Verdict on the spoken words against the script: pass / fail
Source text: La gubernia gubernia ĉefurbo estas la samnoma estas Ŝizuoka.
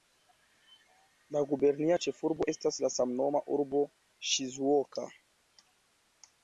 fail